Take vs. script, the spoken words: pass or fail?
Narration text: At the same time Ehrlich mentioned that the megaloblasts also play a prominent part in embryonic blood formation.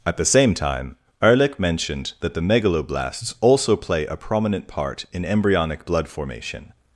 pass